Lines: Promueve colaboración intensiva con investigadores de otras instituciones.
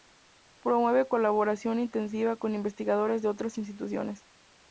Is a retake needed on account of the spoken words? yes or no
no